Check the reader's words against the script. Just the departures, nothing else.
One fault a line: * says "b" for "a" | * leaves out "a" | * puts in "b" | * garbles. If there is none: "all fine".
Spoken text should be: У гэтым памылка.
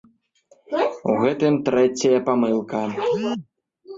* puts in "трэцяя"